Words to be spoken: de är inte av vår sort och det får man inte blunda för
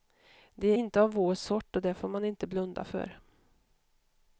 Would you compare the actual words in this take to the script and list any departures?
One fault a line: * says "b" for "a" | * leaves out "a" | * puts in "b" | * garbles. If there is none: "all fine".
all fine